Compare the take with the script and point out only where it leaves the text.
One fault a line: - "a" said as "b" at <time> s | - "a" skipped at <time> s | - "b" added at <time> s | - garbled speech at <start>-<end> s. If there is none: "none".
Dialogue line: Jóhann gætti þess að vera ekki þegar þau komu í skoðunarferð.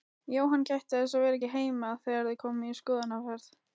- "heima" added at 1.5 s